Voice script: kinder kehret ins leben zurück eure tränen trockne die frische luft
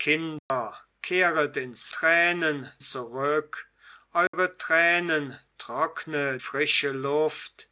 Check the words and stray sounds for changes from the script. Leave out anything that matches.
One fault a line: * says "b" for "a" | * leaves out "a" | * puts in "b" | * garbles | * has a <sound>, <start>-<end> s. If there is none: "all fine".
* has a dropout, 0.4-0.5 s
* says "tränen" for "leben"
* has a dropout, 4.3-4.3 s
* leaves out "die"